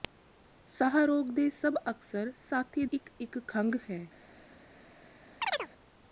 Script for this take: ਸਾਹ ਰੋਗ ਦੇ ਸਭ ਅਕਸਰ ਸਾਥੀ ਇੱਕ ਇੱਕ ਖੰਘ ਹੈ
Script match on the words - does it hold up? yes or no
yes